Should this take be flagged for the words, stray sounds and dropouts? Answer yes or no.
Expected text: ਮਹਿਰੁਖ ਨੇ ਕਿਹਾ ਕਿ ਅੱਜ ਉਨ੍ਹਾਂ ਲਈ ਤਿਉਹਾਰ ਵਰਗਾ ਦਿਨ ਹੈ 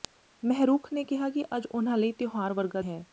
yes